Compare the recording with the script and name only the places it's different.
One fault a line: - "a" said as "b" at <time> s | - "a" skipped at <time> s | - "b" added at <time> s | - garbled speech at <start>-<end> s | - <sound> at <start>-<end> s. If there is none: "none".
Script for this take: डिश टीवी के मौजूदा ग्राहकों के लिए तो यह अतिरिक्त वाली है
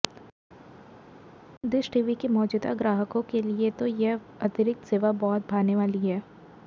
- "सेवा बहुत भाने" added at 4.9 s